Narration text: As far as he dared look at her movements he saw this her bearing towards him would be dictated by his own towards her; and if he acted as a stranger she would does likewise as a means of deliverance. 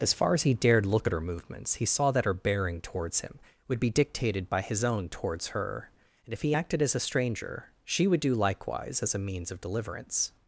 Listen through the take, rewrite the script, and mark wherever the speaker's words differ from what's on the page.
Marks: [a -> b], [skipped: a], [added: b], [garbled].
As far as he dared look at her movements he saw [this -> that] her bearing towards him would be dictated by his own towards her; and if he acted as a stranger she would [does -> do] likewise as a means of deliverance.